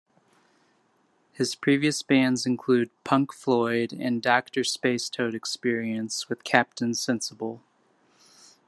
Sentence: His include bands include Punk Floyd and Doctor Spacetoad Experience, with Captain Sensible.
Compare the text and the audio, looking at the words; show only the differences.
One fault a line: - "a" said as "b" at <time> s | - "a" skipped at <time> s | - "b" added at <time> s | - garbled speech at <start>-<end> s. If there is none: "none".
- "include" said as "previous" at 1.5 s